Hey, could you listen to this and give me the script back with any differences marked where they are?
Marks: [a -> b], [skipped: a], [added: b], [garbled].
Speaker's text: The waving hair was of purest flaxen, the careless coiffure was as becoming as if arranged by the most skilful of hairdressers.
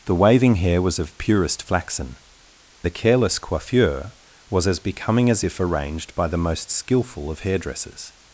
The waving hair was of purest flaxen, the careless coiffure was as becoming as if arranged by the most skilful of hairdressers.